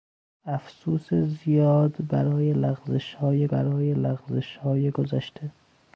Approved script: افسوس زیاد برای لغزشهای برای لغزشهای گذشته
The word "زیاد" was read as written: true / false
true